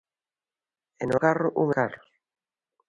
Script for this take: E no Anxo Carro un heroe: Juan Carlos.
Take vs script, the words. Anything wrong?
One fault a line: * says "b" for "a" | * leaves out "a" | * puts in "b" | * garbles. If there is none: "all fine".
* leaves out "Anxo"
* leaves out "heroe Juan"